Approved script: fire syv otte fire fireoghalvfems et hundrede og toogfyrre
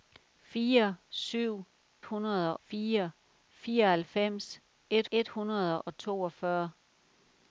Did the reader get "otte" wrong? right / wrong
wrong